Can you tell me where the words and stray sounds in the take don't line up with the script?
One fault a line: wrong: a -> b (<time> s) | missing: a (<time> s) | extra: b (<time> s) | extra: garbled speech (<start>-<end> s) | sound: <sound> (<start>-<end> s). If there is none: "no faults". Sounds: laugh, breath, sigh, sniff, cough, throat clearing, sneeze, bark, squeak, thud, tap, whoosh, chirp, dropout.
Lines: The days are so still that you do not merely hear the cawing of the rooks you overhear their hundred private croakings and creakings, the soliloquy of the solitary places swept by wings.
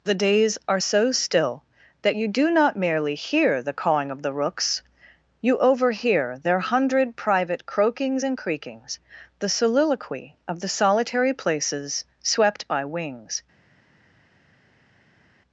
no faults